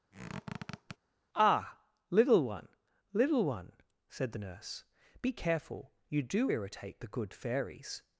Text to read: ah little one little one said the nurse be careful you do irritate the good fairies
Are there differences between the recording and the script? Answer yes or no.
no